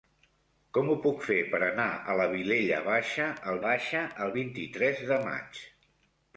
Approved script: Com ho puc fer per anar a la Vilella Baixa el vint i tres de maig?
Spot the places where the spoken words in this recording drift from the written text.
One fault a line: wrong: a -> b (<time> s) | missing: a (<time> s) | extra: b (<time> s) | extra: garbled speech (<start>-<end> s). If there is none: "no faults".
extra: Baixa el (3.7 s)